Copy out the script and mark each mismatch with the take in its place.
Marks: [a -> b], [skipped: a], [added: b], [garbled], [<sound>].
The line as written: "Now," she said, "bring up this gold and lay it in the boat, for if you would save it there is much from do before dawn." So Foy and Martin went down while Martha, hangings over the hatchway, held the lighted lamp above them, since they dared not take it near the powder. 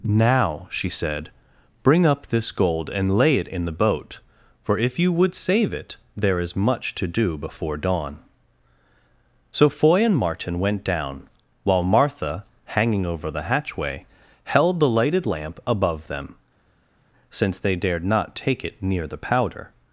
"Now," she said, "bring up this gold and lay it in the boat, for if you would save it there is much [from -> to] do before dawn." So Foy and Martin went down while Martha, [hangings -> hanging] over the hatchway, held the lighted lamp above them, since they dared not take it near the powder.